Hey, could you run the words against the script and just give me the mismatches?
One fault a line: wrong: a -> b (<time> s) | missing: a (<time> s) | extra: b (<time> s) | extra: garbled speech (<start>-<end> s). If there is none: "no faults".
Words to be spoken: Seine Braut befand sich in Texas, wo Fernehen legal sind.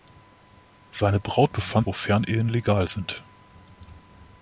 missing: sich in Texas (1.9 s)